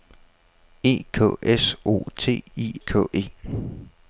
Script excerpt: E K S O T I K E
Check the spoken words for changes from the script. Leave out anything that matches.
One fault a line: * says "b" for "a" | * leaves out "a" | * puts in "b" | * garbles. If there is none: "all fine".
all fine